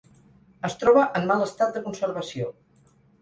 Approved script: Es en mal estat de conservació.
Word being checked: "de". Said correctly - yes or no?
yes